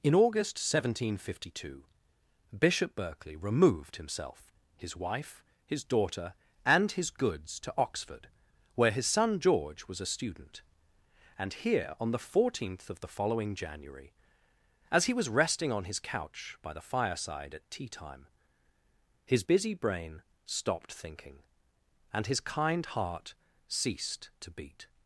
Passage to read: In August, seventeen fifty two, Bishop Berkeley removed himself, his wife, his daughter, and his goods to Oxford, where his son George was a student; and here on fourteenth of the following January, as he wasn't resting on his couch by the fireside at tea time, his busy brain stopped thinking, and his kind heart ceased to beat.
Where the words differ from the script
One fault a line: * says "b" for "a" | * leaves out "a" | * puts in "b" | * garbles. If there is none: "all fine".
* puts in "the"
* says "was" for "wasn't"